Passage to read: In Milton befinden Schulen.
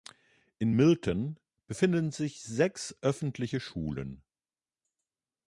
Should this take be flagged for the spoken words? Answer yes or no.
yes